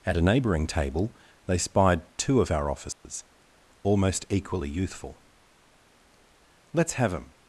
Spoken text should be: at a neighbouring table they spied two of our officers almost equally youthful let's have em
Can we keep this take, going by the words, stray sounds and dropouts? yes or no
no